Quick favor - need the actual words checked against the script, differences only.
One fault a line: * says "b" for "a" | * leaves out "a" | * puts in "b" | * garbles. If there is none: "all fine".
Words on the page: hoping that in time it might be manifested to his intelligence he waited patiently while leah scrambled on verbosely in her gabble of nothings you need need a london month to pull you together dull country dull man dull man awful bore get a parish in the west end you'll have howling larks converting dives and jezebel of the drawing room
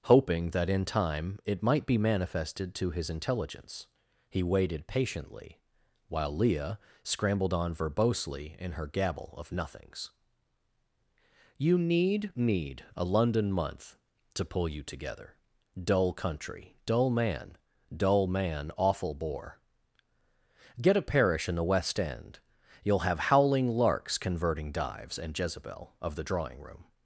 all fine